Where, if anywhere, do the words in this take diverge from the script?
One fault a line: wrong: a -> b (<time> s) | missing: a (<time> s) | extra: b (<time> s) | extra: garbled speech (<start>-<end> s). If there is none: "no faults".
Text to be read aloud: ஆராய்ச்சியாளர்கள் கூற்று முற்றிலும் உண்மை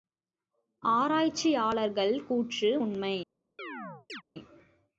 missing: முற்றிலும் (2.8 s)